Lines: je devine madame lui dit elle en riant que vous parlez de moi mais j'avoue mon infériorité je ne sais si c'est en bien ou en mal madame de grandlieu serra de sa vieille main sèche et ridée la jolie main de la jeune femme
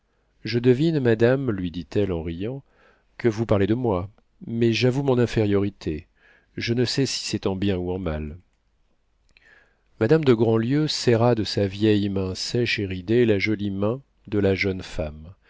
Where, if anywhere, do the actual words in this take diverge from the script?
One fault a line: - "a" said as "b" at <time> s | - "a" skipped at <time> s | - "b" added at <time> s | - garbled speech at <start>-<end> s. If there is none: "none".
none